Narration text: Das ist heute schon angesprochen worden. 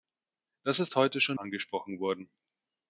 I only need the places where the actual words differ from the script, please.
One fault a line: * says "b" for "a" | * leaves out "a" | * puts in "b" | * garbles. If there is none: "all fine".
all fine